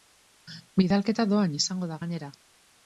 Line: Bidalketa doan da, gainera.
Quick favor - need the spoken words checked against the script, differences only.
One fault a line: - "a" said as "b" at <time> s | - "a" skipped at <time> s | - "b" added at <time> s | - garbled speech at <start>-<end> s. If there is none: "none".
- "izango" added at 1.6 s